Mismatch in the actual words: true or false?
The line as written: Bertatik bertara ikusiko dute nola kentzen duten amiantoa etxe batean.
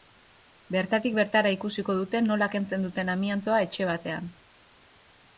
false